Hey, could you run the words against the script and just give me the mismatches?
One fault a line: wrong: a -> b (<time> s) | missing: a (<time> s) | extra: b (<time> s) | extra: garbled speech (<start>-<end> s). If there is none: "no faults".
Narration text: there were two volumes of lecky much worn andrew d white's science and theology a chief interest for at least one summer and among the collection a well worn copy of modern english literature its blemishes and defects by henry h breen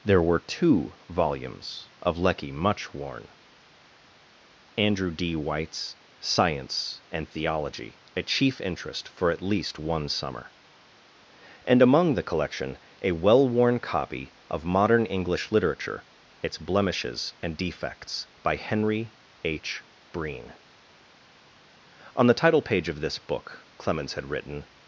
extra: on the title page of this book clemens had written (22.1 s)